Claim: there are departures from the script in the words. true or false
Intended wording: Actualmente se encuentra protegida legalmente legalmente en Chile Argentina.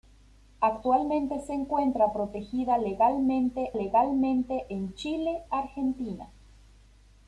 false